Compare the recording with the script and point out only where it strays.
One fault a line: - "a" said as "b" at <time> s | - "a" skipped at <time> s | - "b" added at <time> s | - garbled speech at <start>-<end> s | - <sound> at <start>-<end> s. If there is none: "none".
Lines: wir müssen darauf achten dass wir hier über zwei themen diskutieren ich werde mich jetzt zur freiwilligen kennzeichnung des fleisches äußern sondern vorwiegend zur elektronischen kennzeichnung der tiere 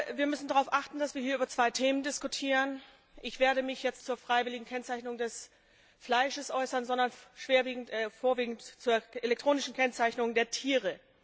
none